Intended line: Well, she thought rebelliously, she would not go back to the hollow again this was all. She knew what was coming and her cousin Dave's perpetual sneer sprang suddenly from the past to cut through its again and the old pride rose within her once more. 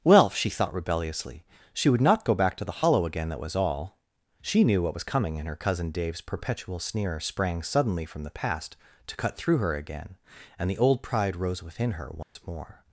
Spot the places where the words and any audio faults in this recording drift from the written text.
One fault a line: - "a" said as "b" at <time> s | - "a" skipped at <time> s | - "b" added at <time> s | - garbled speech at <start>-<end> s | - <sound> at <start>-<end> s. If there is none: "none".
- "this" said as "that" at 3.3 s
- "its" said as "her" at 9.6 s
- dropout at 12.2-12.4 s